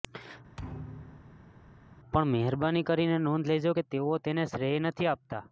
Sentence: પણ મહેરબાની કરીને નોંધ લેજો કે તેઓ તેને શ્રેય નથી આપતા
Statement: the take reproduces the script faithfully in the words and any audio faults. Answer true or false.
false